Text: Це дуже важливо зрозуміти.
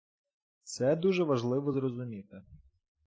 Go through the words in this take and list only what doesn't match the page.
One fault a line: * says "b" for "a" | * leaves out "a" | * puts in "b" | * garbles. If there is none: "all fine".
all fine